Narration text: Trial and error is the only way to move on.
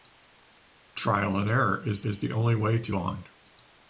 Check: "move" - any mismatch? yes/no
yes